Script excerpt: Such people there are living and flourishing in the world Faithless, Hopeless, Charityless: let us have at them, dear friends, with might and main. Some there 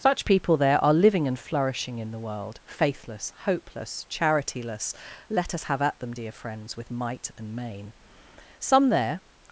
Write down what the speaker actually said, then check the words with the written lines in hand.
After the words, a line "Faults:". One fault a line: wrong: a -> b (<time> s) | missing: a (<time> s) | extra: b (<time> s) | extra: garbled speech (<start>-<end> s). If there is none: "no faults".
Such people there are living and flourishing in the world Faithless, Hopeless, Charityless: let us have at them, dear friends, with might and main. Some there
Faults:
no faults